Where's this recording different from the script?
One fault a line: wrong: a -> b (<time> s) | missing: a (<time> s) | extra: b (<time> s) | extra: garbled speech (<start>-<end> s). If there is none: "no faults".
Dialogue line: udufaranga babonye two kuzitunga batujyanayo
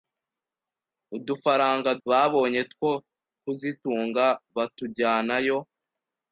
no faults